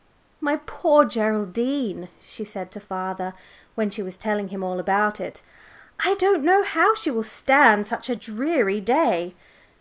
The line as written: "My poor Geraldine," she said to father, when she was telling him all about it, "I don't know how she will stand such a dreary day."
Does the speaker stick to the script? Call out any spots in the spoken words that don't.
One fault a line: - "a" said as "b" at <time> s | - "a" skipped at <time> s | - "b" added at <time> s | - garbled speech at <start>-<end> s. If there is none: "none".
none